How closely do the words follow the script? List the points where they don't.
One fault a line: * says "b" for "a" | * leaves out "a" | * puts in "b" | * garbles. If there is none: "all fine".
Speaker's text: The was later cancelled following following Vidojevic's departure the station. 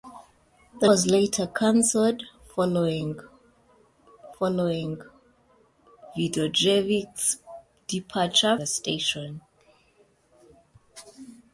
all fine